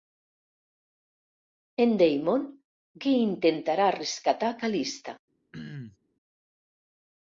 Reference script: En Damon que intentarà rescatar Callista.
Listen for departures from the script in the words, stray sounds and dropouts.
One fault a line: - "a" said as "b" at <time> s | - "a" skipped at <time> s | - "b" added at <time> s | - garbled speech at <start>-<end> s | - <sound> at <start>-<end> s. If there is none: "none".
- throat clearing at 5.5-6.0 s